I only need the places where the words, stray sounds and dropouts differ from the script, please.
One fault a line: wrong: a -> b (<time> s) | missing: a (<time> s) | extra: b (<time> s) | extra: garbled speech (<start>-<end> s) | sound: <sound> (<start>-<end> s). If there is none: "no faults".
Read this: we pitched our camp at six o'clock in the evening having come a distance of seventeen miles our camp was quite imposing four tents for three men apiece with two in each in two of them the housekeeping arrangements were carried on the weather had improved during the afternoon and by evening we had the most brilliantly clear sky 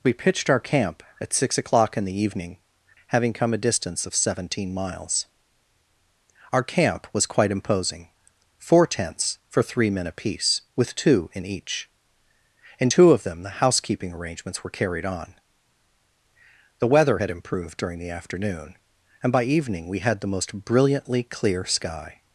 no faults